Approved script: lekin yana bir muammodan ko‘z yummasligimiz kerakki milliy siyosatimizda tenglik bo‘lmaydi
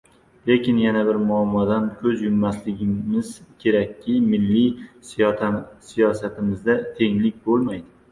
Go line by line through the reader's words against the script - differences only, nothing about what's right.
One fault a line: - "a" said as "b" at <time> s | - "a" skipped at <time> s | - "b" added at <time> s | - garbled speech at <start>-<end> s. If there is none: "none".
none